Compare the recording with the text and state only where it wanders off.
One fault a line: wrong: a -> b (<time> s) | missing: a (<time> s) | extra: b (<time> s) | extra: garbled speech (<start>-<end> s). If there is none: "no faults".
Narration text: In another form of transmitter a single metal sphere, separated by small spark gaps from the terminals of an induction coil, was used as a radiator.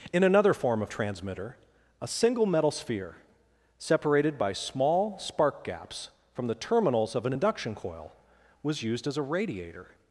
no faults